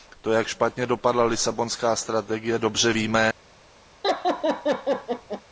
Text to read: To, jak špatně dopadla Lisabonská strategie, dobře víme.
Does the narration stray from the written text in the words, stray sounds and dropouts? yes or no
yes